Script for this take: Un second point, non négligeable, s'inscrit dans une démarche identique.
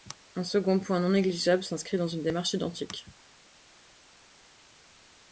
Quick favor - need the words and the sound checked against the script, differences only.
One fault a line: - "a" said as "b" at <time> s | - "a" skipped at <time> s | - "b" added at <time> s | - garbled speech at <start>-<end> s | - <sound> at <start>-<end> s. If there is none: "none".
none